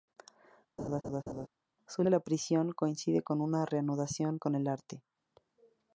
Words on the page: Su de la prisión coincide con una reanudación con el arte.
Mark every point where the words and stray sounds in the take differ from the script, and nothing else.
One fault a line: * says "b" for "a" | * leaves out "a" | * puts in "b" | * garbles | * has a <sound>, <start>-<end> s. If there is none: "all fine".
* has a laugh, 0.8-1.5 s